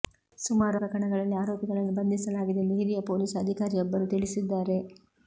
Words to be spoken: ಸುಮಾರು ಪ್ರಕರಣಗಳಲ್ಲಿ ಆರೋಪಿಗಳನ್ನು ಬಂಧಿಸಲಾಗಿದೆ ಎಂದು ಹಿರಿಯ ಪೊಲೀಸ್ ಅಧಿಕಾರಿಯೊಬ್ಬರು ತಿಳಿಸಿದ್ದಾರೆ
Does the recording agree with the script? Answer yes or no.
yes